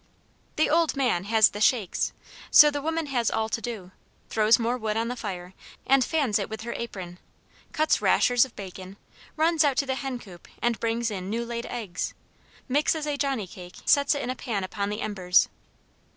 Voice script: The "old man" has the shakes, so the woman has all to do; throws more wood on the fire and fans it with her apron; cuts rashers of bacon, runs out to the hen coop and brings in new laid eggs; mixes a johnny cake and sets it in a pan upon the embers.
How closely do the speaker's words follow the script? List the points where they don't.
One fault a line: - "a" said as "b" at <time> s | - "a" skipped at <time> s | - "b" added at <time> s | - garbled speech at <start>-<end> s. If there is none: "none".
- "and" skipped at 13.8 s